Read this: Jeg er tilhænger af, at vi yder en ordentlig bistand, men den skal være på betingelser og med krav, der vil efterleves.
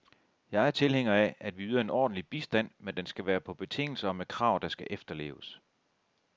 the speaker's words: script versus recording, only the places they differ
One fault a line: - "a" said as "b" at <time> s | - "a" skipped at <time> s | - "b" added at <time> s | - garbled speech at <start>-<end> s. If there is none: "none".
- "vil" said as "skal" at 4.7 s